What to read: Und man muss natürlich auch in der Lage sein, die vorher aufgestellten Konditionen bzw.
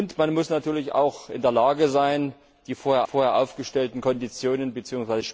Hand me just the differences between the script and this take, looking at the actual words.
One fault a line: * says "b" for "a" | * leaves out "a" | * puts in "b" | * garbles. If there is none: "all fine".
* puts in "vorher"